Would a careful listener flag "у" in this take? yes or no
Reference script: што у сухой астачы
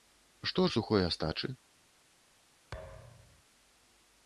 no